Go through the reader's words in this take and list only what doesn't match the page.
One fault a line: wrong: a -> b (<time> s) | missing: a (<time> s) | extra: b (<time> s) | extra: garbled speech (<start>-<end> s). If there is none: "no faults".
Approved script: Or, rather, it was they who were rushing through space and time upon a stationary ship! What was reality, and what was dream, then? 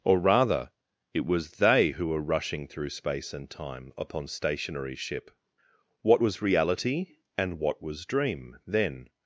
missing: a (4.3 s)